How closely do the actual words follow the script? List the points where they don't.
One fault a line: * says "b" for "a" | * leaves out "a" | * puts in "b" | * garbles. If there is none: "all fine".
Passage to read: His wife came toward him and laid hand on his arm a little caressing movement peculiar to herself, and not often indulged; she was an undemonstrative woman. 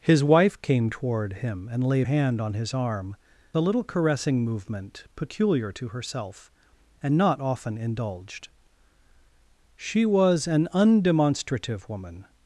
all fine